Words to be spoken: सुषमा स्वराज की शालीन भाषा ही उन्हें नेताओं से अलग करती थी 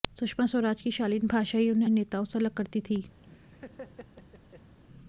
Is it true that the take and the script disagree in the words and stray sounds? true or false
true